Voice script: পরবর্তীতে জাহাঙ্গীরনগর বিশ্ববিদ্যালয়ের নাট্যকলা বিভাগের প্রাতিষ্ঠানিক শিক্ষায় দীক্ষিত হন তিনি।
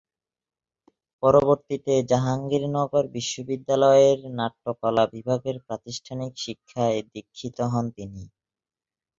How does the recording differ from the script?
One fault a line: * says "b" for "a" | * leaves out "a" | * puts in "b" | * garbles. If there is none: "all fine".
all fine